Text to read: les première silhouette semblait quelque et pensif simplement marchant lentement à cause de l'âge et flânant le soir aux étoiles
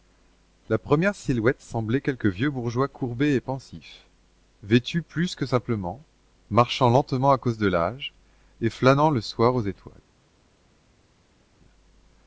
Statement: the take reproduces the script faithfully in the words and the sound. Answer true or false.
false